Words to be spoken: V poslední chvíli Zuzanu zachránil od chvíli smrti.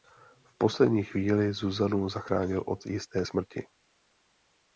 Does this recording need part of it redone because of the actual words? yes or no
yes